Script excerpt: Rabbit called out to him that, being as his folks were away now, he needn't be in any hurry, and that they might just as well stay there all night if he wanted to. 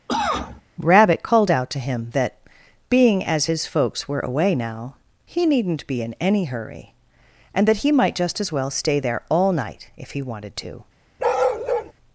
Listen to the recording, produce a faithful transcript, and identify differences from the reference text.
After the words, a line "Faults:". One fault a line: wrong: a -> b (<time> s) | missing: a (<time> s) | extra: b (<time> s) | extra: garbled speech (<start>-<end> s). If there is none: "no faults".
Rabbit called out to him that, being as his folks were away now, he needn't be in any hurry, and that he might just as well stay there all night if he wanted to.
Faults:
wrong: they -> he (7.8 s)